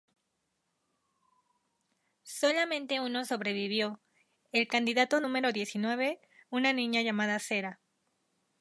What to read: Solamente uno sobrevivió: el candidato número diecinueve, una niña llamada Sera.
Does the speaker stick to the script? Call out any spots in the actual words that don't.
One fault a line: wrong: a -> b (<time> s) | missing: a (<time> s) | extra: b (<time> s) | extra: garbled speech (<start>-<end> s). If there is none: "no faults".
no faults